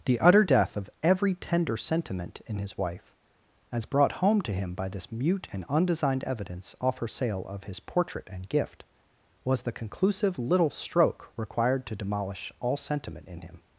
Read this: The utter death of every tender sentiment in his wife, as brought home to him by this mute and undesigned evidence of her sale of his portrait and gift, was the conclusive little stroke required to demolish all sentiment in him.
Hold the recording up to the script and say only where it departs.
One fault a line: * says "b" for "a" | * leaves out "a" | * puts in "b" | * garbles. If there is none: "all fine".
* says "off" for "of"